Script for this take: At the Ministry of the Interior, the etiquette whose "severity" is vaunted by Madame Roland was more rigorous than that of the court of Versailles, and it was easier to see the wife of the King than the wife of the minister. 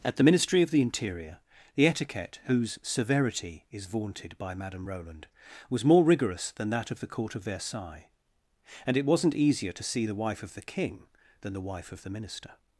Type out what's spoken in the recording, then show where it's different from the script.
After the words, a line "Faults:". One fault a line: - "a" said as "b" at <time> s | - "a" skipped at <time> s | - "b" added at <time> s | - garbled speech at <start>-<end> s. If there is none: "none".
At the Ministry of the Interior, the etiquette whose "severity" is vaunted by Madame Roland was more rigorous than that of the court of Versailles, and it wasn't easier to see the wife of the King than the wife of the minister.
Faults:
- "was" said as "wasn't" at 9.1 s